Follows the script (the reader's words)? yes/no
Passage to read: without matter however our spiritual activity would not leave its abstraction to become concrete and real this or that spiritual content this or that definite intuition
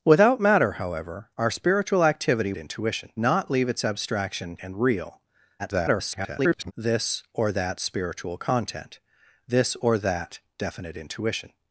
no